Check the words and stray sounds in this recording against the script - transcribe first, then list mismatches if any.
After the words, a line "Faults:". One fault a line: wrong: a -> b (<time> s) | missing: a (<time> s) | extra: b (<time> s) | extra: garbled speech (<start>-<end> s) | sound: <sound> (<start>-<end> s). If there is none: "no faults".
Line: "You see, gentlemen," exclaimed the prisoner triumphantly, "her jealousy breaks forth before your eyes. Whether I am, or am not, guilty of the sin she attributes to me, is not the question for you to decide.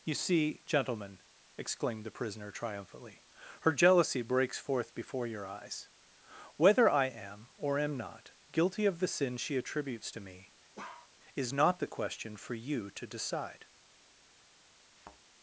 "You see, gentlemen," exclaimed the prisoner triumphantly, "her jealousy breaks forth before your eyes. Whether I am, or am not, guilty of the sin she attributes to me, is not the question for you to decide.
Faults:
sound: bark (10.8-11.1 s)
sound: thud (14.9-15.2 s)